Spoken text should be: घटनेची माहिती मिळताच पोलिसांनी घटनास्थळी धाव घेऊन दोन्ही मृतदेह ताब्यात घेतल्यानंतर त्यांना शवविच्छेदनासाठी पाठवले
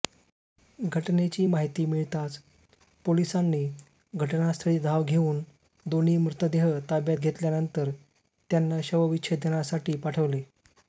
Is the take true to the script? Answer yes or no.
yes